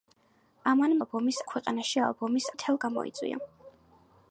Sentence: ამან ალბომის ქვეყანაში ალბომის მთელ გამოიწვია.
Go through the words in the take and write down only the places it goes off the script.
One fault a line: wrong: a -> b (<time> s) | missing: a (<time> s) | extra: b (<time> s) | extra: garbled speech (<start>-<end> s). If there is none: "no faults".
no faults